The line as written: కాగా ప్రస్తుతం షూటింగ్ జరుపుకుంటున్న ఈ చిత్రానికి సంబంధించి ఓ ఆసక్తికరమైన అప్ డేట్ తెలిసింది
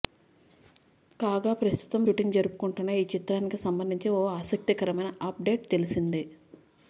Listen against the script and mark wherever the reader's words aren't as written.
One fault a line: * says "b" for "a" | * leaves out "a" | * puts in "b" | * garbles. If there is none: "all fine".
all fine